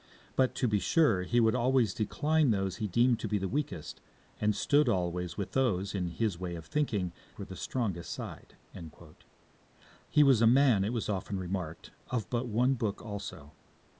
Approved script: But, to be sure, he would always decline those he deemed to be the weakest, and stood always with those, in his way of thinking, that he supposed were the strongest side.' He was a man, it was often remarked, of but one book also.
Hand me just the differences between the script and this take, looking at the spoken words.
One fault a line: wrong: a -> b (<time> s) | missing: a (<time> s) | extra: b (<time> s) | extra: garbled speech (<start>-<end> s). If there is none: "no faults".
missing: that he supposed (7.1 s)